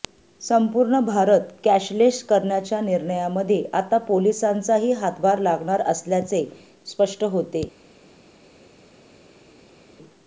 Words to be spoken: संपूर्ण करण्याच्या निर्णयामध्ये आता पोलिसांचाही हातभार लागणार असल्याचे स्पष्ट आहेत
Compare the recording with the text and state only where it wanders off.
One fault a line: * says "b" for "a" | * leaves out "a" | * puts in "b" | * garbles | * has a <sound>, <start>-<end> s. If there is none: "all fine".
* puts in "भारत कॅशलेस"
* says "होते" for "आहेत"